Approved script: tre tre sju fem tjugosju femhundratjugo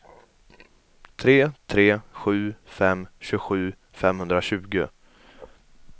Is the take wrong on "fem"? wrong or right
right